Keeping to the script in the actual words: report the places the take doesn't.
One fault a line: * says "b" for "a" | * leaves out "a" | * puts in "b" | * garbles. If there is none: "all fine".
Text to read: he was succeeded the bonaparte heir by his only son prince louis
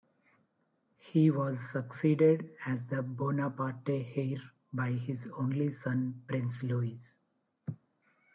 * puts in "as"